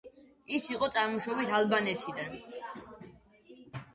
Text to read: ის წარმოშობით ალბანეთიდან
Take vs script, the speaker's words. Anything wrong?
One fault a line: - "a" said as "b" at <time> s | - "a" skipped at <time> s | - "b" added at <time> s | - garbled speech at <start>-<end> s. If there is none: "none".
- "იყო" added at 0.8 s